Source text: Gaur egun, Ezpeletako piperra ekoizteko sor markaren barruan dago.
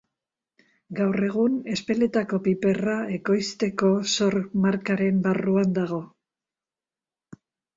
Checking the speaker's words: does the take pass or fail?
pass